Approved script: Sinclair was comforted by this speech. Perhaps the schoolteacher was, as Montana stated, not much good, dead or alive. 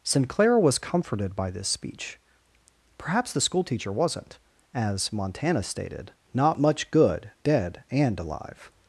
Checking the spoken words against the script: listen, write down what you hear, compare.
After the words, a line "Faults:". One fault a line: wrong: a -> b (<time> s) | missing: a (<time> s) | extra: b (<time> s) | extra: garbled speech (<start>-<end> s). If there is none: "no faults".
Sinclair was comforted by this speech. Perhaps the schoolteacher wasn't, as Montana stated, not much good, dead and alive.
Faults:
wrong: was -> wasn't (3.9 s)
wrong: or -> and (7.9 s)